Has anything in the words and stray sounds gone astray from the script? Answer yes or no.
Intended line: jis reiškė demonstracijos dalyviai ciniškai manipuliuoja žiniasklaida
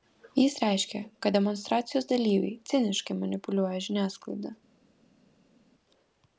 yes